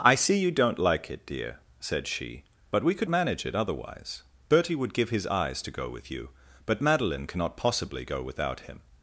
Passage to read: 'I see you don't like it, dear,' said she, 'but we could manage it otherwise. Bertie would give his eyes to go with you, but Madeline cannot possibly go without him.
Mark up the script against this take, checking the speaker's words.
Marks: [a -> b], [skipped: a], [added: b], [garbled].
'I see you don't like it, dear,' said she, 'but we could manage it otherwise. Bertie would give his eyes to go with you, but Madeline cannot possibly go without him.